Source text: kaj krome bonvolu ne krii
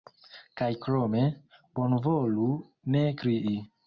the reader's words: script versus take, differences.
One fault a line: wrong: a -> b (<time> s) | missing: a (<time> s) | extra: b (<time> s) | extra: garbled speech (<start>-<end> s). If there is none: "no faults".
no faults